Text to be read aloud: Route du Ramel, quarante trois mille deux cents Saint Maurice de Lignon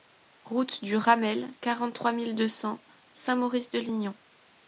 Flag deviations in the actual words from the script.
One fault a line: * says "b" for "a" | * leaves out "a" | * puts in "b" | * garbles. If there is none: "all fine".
all fine